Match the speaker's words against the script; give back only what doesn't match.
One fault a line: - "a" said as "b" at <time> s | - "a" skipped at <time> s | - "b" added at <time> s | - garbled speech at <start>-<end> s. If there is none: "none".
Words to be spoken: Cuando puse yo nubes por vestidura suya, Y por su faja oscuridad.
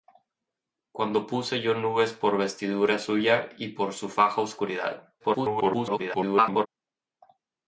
- garbled speech at 5.2-6.7 s